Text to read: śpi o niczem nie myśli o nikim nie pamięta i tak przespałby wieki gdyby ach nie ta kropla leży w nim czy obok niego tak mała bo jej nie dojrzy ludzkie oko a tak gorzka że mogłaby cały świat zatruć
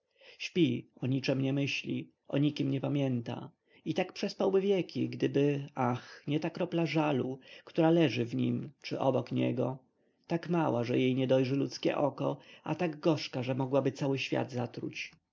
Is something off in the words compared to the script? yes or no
yes